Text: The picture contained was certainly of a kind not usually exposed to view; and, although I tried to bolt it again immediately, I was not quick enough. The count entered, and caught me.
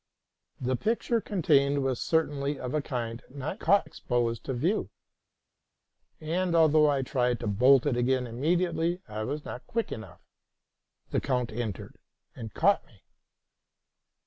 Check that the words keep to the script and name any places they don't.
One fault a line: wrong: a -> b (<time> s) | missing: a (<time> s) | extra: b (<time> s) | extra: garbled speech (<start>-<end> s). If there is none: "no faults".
wrong: usually -> caught (3.6 s)